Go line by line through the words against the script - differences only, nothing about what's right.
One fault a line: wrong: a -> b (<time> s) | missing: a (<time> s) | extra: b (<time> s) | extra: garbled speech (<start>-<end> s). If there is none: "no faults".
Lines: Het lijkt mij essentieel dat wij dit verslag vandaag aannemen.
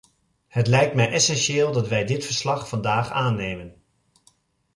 no faults